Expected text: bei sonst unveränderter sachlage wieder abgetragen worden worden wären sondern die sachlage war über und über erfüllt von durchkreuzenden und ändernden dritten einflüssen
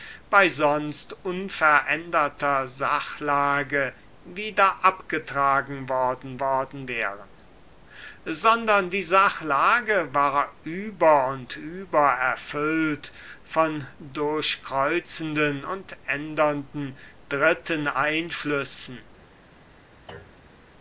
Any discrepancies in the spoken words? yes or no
no